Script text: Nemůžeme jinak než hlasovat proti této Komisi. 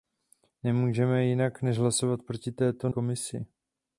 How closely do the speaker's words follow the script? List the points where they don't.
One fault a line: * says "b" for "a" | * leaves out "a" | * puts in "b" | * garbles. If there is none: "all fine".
all fine